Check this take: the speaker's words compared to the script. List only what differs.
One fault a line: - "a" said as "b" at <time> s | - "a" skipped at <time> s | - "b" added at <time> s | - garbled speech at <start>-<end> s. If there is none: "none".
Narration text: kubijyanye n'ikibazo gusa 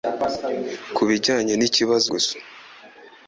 none